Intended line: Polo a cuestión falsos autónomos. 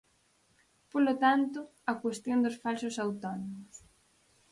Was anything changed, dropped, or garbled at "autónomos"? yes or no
no